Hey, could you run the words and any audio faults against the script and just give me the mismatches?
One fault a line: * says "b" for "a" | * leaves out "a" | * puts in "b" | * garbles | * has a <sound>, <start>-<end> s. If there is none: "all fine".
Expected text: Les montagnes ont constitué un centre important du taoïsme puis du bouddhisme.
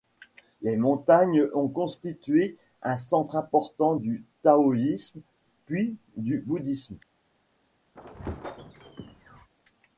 * has a squeak, 7.9-9.5 s